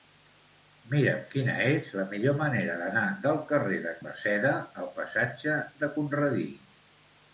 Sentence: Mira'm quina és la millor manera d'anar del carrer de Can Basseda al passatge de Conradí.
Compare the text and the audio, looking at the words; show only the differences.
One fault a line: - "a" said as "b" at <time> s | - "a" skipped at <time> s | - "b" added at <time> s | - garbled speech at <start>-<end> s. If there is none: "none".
- "Can" skipped at 3.9 s